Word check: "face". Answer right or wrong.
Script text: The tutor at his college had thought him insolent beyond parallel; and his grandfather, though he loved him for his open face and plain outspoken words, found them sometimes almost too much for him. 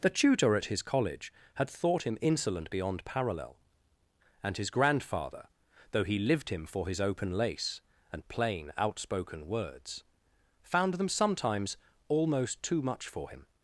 wrong